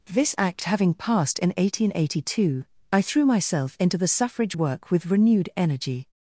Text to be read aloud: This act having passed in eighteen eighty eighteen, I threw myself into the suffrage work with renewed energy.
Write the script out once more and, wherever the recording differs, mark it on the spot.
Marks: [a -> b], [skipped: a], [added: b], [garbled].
This act having passed in eighteen eighty [eighteen, -> two] I threw myself into the suffrage work with renewed energy.